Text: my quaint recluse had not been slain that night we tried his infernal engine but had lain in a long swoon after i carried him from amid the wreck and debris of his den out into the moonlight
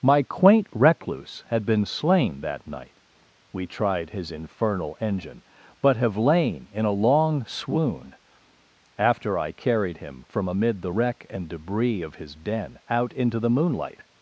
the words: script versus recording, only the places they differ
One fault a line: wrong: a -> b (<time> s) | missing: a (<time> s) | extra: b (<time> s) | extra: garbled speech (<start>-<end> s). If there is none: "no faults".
missing: not (1.7 s)
wrong: had -> have (6.0 s)